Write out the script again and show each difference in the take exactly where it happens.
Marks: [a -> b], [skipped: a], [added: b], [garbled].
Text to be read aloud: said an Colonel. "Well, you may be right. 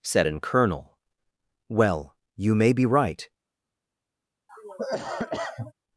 said an Colonel. "Well, you may be right.